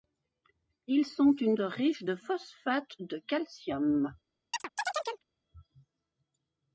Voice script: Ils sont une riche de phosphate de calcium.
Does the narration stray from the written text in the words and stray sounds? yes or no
yes